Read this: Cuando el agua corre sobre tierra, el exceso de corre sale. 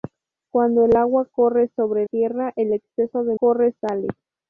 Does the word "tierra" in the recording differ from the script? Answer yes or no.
no